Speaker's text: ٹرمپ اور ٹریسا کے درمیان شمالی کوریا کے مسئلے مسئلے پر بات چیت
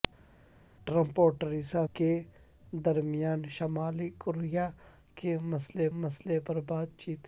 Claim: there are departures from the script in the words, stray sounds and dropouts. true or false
false